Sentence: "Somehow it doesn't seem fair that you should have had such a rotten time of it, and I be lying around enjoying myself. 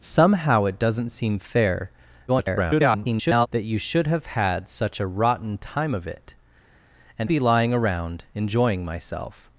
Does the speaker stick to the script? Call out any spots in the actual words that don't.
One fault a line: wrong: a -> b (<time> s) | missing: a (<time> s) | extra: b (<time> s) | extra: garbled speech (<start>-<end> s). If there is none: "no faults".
extra: garbled speech (2.3-3.5 s)
missing: I (7.3 s)